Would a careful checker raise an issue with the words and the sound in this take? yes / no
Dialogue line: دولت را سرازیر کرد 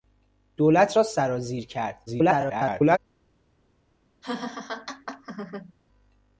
yes